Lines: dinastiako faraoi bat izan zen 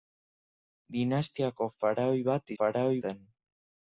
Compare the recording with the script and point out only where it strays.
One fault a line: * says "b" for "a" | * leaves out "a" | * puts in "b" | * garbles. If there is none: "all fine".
* says "faraoi" for "izan"